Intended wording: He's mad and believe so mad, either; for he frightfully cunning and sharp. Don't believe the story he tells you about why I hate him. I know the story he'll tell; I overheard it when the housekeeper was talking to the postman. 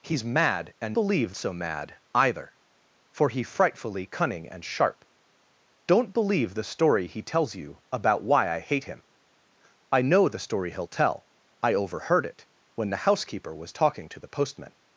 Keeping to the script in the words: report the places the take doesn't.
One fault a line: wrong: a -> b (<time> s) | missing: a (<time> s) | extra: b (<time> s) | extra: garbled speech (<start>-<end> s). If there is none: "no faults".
no faults